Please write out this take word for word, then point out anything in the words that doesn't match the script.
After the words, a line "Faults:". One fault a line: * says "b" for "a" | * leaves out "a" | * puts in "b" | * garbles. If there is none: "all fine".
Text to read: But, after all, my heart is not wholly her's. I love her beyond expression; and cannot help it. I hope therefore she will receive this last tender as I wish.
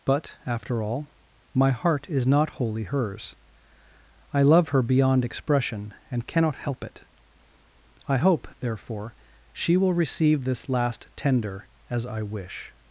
But, after all, my heart is not wholly her's. I love her beyond expression; and cannot help it. I hope therefore she will receive this last tender as I wish.
Faults:
all fine